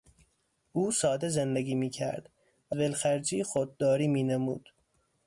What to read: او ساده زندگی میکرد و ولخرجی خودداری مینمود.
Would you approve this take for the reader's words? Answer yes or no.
yes